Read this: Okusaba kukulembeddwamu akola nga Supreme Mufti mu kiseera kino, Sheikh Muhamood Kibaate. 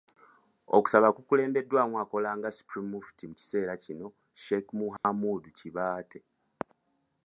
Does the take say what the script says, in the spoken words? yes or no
yes